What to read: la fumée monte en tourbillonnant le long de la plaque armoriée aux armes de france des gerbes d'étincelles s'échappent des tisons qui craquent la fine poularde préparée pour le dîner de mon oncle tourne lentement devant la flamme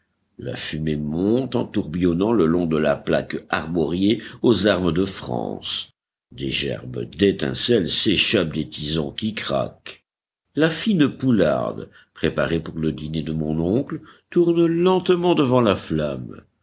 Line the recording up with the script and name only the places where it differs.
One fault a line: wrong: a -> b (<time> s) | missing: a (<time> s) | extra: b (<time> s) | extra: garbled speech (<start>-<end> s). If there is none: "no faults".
no faults